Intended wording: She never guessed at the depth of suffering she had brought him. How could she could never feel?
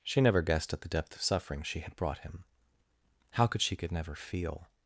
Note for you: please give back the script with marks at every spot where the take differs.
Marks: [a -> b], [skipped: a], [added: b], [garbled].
She never guessed at the depth of suffering she had brought him. How could she could never feel?